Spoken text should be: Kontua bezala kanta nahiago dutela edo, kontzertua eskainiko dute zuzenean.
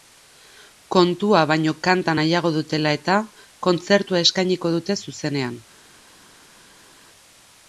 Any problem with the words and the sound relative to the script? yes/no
yes